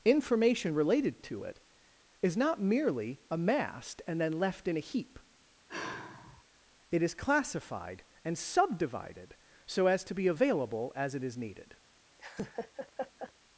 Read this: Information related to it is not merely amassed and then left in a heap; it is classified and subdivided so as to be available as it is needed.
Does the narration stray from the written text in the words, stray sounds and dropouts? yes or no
yes